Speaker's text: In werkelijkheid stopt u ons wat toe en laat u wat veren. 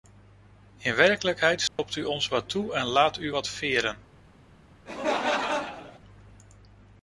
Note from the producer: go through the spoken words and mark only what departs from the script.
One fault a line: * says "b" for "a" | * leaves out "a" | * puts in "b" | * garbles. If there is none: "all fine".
all fine